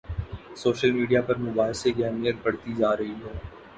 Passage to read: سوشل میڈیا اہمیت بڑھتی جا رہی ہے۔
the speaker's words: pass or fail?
fail